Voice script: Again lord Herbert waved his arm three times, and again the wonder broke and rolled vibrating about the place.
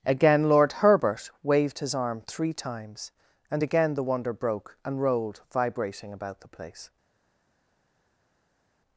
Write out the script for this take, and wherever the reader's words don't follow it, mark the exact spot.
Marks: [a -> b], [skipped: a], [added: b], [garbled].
Again lord Herbert waved his arm three times, and again the wonder broke and rolled vibrating about the place.